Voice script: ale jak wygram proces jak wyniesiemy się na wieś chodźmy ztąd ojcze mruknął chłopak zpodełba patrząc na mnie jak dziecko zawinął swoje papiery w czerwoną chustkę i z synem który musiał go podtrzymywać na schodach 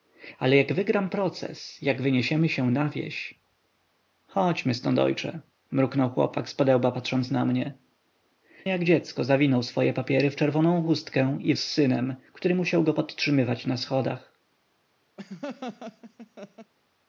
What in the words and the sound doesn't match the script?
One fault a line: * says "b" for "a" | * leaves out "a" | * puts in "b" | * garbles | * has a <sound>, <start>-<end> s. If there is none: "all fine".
* has a laugh, 15.2-16.7 s